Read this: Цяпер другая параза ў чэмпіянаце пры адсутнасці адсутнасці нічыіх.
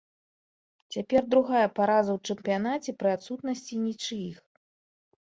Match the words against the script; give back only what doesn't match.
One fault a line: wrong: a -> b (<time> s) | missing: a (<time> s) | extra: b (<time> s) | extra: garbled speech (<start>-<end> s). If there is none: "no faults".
missing: адсутнасці (3.7 s)